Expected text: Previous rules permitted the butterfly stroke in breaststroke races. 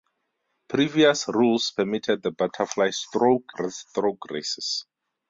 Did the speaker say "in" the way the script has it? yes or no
no